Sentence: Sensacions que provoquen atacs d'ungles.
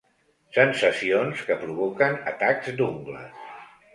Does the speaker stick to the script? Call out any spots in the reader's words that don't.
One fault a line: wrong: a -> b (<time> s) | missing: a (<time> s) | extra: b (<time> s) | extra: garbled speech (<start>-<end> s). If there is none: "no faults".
no faults